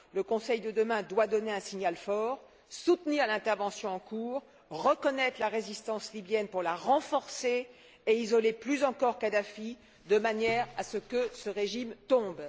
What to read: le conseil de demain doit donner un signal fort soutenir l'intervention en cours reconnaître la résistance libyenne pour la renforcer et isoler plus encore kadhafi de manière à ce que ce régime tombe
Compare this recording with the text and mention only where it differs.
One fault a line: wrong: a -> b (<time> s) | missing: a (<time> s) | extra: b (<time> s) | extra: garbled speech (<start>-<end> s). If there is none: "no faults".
no faults